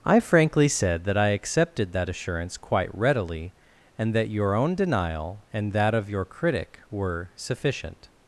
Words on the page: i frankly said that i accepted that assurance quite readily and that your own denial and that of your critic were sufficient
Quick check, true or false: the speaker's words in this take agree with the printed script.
true